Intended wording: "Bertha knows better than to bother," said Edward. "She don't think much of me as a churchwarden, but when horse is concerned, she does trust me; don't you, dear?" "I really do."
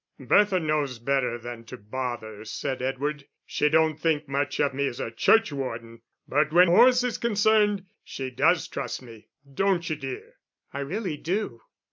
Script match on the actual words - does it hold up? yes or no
yes